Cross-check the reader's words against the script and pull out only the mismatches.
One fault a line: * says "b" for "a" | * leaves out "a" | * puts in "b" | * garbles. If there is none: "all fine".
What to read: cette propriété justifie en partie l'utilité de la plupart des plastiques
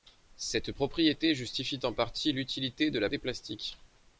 * leaves out "plupart"